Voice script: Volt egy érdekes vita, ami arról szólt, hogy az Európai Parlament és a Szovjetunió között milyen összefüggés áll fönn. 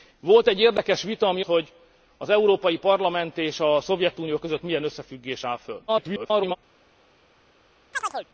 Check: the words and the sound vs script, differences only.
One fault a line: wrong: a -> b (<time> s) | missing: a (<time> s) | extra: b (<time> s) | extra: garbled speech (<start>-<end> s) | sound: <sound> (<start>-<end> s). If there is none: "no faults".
missing: arról szólt (1.4 s)
extra: garbled speech (5.9-6.6 s)
sound: chirp (7.9-8.3 s)